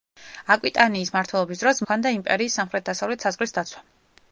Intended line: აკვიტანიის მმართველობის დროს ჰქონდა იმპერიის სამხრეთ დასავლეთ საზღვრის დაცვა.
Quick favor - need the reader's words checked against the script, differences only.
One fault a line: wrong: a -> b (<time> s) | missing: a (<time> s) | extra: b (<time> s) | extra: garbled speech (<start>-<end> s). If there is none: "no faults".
no faults